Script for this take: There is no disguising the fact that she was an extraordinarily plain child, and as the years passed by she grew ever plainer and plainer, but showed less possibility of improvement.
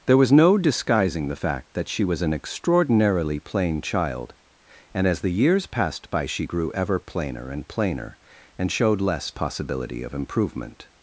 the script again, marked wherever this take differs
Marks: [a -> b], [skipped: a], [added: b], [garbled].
There [is -> was] no disguising the fact that she was an extraordinarily plain child, and as the years passed by she grew ever plainer and plainer, [but -> and] showed less possibility of improvement.